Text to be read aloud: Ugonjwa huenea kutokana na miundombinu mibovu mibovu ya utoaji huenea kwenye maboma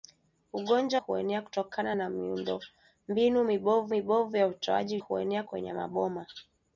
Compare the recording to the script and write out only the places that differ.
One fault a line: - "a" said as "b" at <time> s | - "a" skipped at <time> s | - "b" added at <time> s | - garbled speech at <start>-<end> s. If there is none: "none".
none